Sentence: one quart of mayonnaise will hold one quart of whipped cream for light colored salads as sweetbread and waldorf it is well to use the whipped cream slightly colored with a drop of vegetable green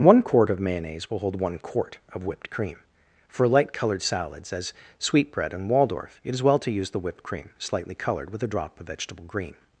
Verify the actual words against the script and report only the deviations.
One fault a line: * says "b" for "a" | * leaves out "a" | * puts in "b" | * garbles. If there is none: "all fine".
all fine